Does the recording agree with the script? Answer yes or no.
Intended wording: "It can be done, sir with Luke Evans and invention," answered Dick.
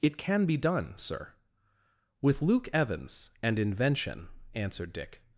yes